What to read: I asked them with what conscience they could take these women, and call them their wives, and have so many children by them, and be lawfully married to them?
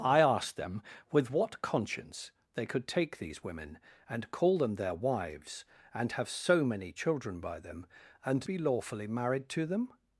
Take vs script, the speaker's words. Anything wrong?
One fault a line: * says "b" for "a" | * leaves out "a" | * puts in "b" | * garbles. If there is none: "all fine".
all fine